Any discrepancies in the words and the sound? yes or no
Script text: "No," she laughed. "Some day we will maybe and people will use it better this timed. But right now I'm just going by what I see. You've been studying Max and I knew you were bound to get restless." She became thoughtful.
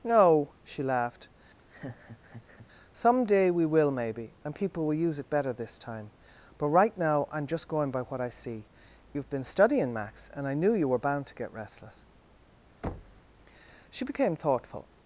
yes